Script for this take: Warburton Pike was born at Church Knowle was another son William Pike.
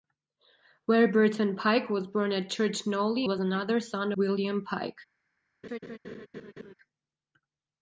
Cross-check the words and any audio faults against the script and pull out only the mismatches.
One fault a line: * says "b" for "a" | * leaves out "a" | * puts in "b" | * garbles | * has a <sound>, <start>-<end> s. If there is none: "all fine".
* has a laugh, 5.6-6.7 s